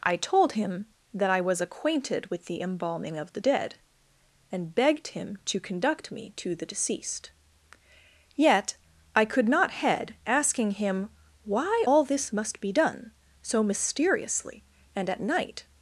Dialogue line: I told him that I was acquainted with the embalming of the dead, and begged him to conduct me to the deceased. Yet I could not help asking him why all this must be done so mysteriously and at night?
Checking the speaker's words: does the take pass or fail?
fail